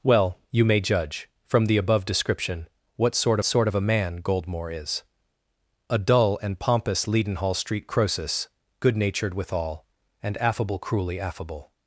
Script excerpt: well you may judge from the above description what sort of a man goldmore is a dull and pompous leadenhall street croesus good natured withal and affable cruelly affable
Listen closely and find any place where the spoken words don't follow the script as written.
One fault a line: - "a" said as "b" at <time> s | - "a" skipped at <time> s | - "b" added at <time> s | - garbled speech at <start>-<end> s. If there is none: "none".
- "sort" added at 3.4 s